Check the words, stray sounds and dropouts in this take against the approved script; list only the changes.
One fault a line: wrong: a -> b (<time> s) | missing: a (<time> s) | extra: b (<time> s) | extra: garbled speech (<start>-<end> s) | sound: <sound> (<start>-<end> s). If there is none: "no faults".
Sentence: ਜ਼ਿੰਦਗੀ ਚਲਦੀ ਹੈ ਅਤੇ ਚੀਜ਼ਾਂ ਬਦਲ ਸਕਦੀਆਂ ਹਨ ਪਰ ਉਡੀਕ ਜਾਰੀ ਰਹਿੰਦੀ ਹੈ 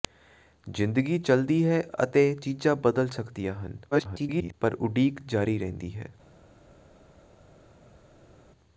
extra: garbled speech (3.9-4.5 s)